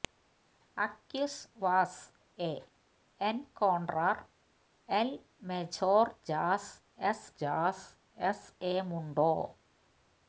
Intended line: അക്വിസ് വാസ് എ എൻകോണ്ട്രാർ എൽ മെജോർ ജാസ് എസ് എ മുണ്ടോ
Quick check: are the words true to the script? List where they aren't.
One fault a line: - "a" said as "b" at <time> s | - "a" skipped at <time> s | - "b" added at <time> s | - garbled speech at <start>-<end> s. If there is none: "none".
- "ജാസ് എസ്" added at 7.4 s